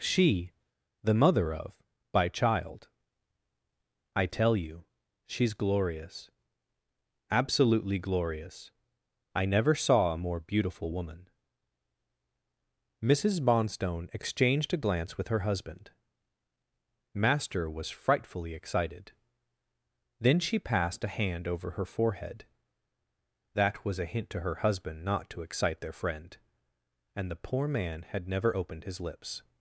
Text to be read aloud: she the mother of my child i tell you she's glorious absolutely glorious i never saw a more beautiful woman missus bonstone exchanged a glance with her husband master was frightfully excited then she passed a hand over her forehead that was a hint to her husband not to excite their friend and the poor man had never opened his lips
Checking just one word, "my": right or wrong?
wrong